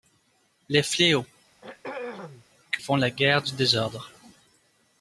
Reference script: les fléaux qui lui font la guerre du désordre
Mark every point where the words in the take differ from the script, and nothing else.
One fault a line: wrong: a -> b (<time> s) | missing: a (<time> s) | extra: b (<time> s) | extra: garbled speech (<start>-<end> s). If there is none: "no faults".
missing: lui (2.8 s)